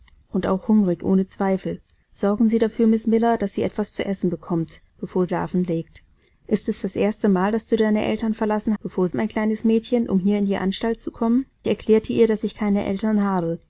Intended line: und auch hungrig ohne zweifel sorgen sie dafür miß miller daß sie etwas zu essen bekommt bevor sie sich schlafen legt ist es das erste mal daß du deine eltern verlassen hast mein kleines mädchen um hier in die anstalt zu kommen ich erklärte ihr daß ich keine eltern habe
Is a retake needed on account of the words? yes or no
yes